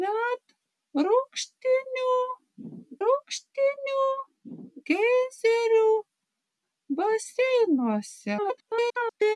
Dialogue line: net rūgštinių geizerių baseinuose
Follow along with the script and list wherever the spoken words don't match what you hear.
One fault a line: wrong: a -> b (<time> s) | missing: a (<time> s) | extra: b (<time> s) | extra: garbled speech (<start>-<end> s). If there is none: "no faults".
extra: rūgštinių (3.0 s)
extra: garbled speech (8.4-9.4 s)